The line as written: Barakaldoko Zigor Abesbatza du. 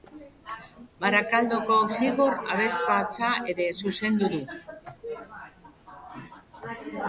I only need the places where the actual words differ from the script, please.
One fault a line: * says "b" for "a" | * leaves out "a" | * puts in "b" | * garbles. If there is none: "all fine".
* puts in "ere zuzendu"